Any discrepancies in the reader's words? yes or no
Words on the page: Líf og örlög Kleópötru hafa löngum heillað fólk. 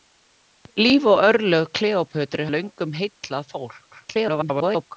yes